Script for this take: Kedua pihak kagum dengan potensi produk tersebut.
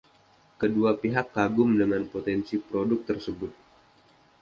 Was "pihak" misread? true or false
false